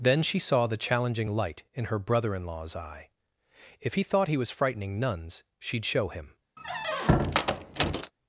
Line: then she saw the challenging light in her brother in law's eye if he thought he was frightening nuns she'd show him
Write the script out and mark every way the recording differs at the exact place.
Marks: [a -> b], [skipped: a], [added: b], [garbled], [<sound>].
then she saw the challenging light in her brother in law's eye if he thought he was frightening nuns she'd show him [squeak]